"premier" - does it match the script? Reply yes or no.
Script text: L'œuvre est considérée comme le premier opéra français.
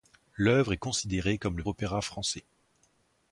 no